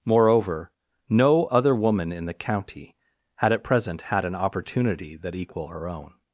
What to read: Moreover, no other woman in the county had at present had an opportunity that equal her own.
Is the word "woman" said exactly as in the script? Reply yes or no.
yes